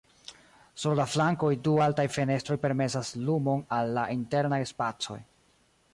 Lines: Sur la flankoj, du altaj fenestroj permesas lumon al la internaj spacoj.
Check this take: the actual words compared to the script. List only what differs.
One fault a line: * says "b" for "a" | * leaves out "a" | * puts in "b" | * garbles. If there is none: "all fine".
all fine